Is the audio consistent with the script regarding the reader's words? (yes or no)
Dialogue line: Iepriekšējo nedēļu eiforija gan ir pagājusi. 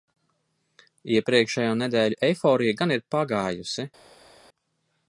yes